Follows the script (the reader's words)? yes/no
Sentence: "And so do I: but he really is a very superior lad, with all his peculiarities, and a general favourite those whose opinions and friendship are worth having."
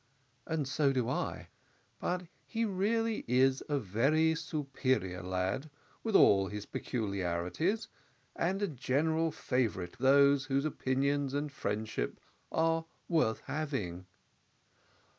yes